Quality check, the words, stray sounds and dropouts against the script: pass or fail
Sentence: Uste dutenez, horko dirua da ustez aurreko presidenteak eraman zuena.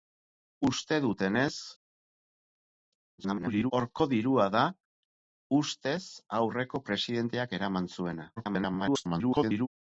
fail